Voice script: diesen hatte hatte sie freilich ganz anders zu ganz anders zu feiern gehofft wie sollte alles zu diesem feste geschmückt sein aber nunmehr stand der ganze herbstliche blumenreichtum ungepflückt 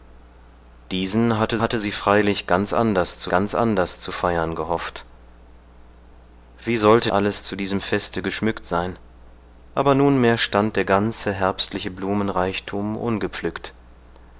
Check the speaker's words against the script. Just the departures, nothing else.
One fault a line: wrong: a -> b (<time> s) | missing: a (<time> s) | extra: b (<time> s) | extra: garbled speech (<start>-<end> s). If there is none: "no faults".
no faults